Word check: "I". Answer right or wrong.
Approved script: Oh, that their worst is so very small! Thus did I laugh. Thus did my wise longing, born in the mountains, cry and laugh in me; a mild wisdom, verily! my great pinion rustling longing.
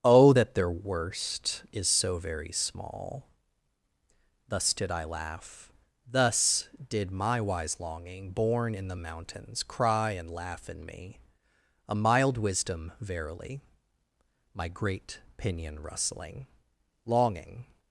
right